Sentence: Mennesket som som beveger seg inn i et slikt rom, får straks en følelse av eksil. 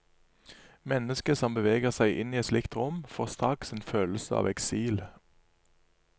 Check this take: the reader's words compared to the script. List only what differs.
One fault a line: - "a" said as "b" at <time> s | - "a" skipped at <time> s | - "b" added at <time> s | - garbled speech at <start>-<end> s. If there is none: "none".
- "som" skipped at 1.5 s